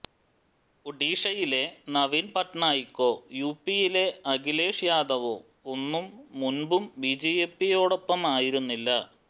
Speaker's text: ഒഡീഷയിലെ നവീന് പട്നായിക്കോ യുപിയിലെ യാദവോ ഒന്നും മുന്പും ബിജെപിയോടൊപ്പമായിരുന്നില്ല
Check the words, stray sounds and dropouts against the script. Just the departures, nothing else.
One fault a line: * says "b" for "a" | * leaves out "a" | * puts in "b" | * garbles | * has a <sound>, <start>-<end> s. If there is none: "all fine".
* puts in "അഖിലേഷ്"